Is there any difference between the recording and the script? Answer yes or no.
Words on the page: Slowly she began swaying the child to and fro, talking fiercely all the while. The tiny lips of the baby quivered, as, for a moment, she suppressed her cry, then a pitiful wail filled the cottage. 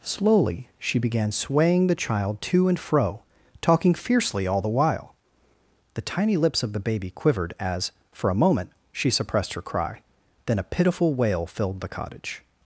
no